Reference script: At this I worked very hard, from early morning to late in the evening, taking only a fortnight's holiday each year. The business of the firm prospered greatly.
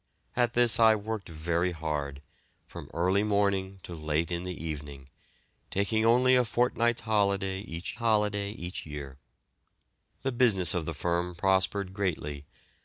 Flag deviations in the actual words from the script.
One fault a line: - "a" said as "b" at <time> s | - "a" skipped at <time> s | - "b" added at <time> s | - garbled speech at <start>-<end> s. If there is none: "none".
- "holiday each" added at 8.0 s